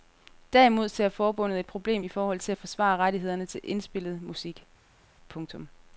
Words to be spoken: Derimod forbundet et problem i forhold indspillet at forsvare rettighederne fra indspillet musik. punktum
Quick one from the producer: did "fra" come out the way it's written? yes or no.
no